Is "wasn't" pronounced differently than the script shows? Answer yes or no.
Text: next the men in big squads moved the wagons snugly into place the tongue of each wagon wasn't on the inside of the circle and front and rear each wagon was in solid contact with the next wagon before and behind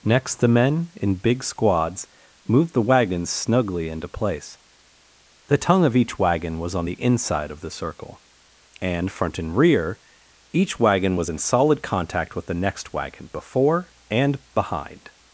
yes